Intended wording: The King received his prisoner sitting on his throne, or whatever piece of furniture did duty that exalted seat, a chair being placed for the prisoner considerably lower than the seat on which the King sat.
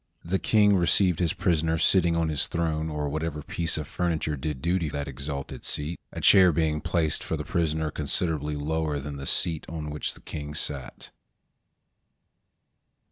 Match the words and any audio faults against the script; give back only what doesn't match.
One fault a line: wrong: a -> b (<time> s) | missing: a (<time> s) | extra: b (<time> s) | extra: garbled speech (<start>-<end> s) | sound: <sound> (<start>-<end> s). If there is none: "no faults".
no faults